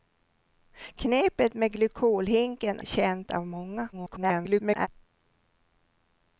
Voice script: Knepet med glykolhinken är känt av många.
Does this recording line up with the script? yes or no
no